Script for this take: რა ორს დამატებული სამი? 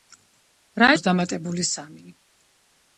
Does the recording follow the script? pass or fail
pass